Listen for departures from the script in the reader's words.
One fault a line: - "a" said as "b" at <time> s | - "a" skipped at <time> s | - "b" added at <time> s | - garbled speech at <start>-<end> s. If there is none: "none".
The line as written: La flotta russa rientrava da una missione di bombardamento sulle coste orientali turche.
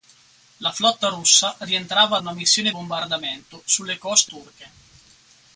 - "da" skipped at 2.2 s
- "di" skipped at 2.7 s
- "orientali" skipped at 4.3 s